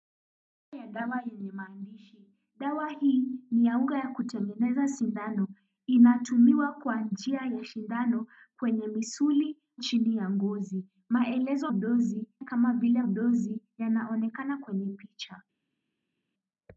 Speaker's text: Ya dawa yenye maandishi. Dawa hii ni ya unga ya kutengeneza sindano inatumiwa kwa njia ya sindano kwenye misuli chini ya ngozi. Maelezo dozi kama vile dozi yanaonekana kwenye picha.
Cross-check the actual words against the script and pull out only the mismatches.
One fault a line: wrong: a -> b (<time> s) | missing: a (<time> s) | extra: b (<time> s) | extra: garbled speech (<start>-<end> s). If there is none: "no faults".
no faults